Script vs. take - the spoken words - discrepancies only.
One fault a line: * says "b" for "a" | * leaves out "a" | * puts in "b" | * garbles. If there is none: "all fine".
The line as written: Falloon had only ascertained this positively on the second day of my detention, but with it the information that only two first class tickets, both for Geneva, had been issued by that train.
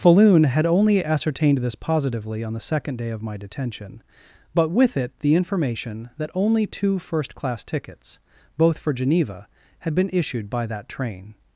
all fine